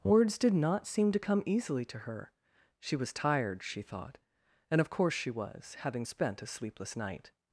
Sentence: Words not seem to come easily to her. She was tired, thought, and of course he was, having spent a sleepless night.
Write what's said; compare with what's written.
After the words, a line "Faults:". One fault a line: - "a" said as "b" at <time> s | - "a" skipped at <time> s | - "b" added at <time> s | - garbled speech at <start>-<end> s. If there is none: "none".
Words did not seem to come easily to her. She was tired, she thought, and of course she was, having spent a sleepless night.
Faults:
- "did" added at 0.4 s
- "she" added at 3.6 s
- "he" said as "she" at 5.1 s